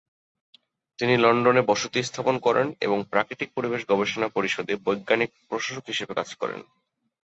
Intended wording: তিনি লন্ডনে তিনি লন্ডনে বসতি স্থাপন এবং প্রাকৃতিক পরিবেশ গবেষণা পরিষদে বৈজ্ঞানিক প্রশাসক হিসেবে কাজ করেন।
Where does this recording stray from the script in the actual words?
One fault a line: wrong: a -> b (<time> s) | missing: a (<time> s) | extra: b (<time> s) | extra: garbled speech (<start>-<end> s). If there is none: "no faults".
missing: তিনি লন্ডনে (1.6 s)
extra: করেন (2.4 s)